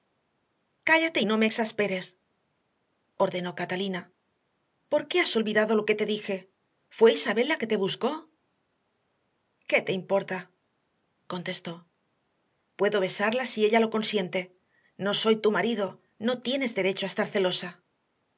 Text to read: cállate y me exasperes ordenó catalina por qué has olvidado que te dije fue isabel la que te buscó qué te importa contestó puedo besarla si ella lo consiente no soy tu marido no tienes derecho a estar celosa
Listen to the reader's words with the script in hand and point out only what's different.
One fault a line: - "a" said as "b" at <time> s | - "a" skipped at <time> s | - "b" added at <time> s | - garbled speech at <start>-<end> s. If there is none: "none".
- "no" added at 1.3 s
- "lo" added at 5.7 s